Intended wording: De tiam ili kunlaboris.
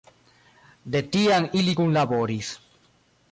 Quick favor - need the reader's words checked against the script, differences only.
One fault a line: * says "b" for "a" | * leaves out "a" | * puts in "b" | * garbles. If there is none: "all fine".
all fine